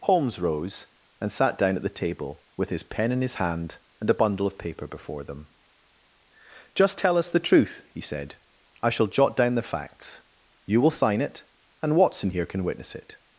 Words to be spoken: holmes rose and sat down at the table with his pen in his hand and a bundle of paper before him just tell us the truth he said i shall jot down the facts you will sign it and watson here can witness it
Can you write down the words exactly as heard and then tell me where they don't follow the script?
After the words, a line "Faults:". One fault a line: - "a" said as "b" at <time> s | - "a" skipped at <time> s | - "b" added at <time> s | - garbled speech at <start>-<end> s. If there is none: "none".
holmes rose and sat down at the table with his pen in his hand and a bundle of paper before them just tell us the truth he said i shall jot down the facts you will sign it and watson here can witness it
Faults:
- "him" said as "them" at 5.2 s